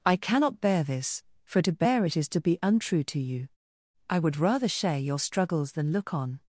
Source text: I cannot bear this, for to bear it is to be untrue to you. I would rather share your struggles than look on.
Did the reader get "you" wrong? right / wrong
right